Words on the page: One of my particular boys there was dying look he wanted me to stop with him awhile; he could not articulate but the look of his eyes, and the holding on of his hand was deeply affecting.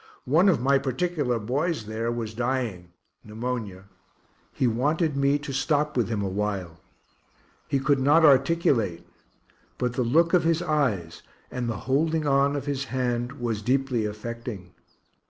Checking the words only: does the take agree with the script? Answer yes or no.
no